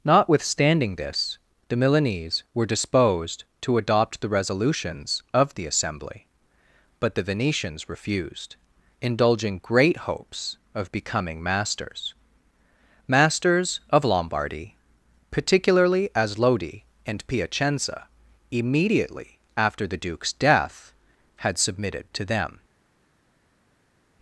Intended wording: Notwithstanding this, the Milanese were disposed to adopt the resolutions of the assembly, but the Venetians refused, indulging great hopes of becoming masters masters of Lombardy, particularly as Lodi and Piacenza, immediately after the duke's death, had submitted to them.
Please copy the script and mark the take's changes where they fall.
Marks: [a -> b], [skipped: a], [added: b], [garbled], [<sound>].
Notwithstanding this, the Milanese were disposed to adopt the resolutions of the assembly, but the Venetians refused, indulging great hopes of becoming masters masters of Lombardy, particularly as Lodi and Piacenza, immediately after the duke's death, had submitted to them.